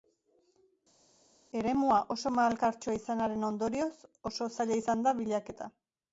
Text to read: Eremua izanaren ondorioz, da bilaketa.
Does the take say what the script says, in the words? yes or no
no